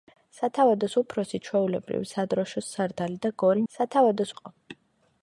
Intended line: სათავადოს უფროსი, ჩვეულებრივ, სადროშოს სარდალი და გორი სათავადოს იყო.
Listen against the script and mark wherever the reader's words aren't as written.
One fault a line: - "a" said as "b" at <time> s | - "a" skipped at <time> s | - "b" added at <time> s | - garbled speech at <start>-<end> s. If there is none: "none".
none